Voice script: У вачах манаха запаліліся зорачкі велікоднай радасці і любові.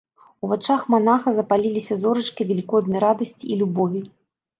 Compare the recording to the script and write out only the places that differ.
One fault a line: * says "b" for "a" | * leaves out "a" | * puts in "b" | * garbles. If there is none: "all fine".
all fine